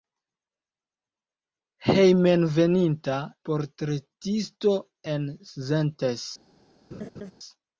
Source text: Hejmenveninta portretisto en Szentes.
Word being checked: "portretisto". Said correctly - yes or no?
yes